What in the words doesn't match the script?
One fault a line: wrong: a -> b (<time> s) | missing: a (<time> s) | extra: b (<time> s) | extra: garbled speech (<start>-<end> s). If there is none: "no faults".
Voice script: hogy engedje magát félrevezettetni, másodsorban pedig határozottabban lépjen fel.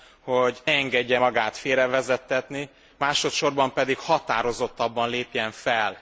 no faults